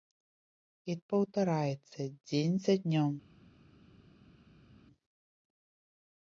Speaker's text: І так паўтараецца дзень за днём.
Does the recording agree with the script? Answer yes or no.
no